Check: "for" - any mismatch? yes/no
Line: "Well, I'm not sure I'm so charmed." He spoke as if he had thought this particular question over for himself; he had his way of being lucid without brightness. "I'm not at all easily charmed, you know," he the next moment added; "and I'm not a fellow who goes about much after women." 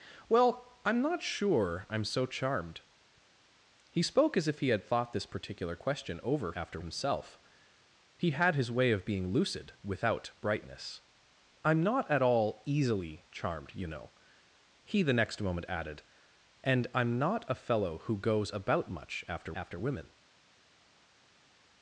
yes